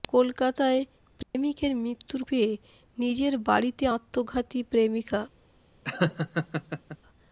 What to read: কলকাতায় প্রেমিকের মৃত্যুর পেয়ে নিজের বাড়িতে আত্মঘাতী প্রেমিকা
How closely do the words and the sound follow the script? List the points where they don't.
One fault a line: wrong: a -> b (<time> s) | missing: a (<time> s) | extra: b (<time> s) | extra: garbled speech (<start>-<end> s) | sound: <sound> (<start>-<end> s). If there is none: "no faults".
sound: dropout (1.2-1.3 s)
sound: laugh (5.8-7.0 s)